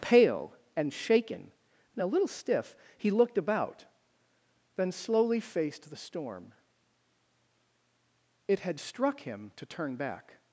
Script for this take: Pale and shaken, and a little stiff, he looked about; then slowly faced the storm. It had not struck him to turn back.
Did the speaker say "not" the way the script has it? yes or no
no